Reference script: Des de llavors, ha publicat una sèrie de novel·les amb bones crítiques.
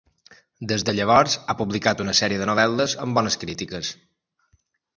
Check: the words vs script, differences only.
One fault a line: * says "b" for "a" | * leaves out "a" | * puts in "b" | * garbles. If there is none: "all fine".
all fine